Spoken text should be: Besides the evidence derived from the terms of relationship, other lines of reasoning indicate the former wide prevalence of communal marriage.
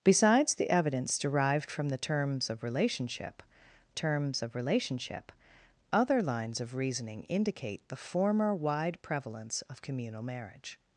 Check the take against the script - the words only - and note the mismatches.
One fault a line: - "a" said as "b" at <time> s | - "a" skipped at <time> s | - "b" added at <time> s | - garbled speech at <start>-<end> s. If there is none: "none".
- "terms of relationship" added at 3.9 s